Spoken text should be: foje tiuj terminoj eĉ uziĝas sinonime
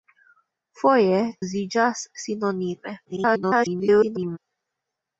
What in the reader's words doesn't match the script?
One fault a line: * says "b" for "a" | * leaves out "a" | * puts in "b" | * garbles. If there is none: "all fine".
* leaves out "tiuj terminoj eĉ"
* garbles